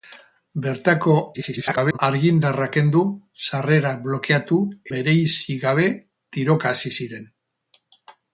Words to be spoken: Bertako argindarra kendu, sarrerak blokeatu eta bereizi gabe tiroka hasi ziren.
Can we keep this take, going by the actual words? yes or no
no